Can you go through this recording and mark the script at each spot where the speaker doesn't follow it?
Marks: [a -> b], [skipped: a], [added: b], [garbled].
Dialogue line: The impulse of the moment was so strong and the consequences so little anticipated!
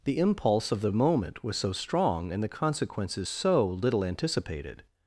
The impulse of the moment was so strong and the consequences so little anticipated!